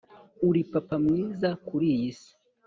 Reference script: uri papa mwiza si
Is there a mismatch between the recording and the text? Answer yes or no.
yes